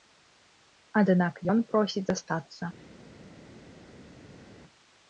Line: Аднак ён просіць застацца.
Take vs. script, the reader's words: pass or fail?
pass